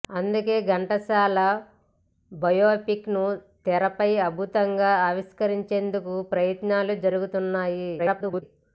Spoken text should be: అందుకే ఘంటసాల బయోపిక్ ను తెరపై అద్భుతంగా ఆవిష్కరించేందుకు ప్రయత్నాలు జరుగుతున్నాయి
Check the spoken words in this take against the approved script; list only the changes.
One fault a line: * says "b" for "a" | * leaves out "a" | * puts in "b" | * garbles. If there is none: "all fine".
* garbles